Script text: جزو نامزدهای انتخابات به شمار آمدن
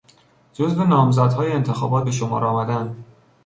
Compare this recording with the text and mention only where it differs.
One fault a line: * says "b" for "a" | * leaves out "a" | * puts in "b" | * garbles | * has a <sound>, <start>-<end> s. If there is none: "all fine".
all fine